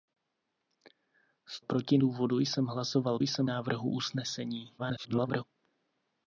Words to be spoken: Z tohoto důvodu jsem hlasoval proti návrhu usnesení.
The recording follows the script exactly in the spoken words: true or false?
false